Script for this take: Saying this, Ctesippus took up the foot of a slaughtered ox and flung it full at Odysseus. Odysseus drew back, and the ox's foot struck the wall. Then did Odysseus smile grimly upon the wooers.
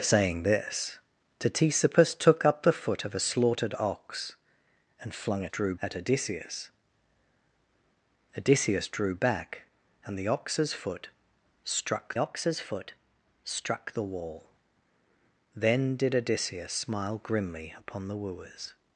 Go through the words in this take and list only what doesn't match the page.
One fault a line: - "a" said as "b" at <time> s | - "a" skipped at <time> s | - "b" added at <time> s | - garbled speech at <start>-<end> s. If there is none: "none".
- "full" said as "drew" at 5.5 s
- "ox's foot struck" added at 12.2 s